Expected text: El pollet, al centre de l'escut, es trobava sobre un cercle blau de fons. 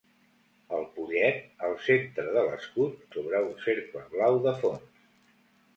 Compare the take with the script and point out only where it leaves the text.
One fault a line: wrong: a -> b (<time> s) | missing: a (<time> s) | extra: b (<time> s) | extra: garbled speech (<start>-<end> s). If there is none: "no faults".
missing: es trobava (3.0 s)